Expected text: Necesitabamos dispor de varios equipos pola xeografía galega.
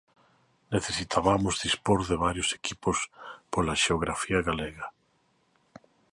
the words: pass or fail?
pass